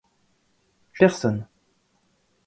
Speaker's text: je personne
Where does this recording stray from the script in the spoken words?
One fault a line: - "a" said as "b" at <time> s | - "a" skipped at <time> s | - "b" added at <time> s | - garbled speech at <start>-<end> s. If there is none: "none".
none